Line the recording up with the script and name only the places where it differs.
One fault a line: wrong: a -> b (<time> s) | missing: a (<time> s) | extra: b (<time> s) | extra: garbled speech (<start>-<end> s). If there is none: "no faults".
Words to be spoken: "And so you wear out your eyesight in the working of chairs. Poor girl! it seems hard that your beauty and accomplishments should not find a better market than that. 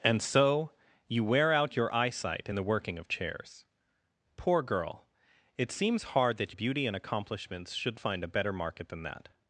missing: your (6.5 s)
missing: not (8.0 s)